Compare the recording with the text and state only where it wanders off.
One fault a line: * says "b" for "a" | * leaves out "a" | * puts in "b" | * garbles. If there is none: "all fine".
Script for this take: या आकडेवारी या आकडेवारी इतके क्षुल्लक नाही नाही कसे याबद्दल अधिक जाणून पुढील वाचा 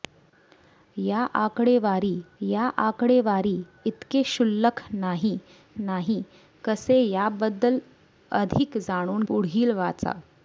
all fine